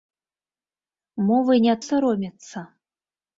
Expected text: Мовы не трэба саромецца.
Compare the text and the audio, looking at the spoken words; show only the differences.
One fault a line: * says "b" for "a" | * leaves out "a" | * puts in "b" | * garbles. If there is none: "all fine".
* leaves out "трэба"